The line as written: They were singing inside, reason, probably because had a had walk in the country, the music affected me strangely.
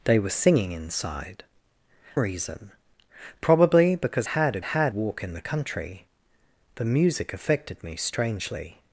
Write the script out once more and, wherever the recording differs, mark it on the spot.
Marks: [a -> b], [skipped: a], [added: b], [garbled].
They were singing inside, reason, probably because had a had walk in the country, the music affected me strangely.